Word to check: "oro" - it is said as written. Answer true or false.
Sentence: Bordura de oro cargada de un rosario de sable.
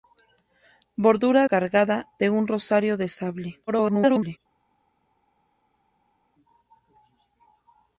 false